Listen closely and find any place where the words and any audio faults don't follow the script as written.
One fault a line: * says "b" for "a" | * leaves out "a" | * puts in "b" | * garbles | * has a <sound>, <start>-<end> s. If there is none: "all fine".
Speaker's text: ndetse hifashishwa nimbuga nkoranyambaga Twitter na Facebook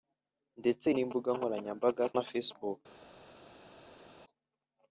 * leaves out "hifashishwa"
* leaves out "Twitter"